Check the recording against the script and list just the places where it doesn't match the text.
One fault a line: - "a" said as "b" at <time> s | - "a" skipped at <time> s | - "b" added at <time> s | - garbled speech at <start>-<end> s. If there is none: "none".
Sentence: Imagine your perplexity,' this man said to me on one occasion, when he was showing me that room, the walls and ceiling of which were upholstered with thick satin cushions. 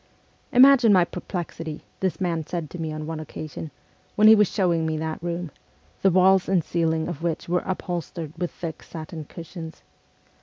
- "your" said as "my" at 0.9 s